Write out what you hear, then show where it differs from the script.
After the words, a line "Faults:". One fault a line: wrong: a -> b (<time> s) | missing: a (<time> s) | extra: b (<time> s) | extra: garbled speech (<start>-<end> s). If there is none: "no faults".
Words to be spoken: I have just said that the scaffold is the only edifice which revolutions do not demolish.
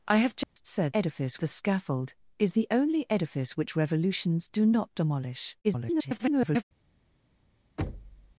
I have just said edifice the scaffold is the only edifice which revolutions do not demolish. [garbled]
Faults:
wrong: that -> edifice (0.9 s)
extra: garbled speech (5.6-6.6 s)